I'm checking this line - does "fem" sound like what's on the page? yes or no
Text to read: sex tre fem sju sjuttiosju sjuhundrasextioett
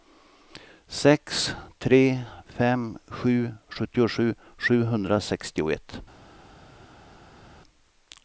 yes